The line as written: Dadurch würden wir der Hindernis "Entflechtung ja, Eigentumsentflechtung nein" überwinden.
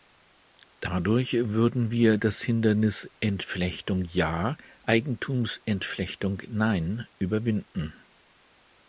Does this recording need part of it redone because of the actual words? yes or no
yes